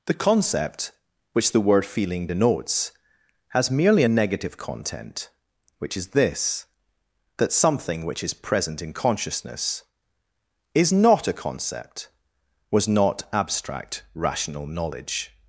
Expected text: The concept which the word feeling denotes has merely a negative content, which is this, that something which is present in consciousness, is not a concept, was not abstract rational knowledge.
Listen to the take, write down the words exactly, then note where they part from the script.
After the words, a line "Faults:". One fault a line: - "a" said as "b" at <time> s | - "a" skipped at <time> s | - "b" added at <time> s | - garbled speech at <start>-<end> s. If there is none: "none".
The concept which the word feeling denotes has merely a negative content, which is this, that something which is present in consciousness, is not a concept, was not abstract rational knowledge.
Faults:
none